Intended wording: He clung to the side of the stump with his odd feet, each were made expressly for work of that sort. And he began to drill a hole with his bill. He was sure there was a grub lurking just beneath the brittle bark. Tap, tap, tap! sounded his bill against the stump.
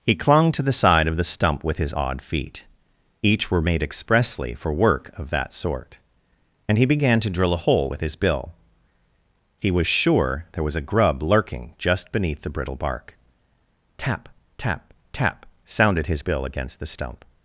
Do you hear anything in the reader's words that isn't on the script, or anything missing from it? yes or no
no